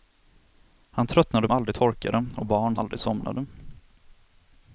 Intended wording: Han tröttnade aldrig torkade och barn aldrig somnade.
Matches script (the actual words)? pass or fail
pass